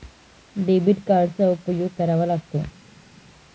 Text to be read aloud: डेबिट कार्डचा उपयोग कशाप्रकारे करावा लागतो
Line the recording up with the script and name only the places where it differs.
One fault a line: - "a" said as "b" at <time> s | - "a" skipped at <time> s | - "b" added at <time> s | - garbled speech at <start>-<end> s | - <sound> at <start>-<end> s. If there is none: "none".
- "कशाप्रकारे" skipped at 1.9 s